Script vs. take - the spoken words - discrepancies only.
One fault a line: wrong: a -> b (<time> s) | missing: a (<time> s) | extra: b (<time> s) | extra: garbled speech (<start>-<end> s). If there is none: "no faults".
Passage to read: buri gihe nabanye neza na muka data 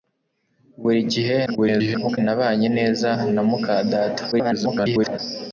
extra: garbled speech (1.5-2.2 s)
extra: garbled speech (4.3-5.2 s)